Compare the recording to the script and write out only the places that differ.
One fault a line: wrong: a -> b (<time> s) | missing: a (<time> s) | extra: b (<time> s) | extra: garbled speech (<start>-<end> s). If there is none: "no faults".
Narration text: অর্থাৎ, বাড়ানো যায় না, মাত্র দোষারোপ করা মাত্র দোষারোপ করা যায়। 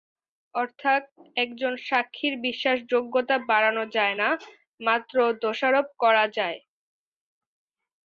extra: একজন সাক্ষীর বিশ্বাসযোগ্যতা (1.4 s)
missing: মাত্র দোষারোপ করা (6.3 s)